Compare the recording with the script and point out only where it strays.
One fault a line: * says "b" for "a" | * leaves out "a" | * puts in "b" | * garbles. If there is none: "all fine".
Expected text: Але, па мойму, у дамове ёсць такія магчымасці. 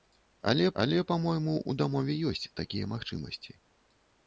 * puts in "але"